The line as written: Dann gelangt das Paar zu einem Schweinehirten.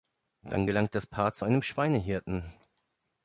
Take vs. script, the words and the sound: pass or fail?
pass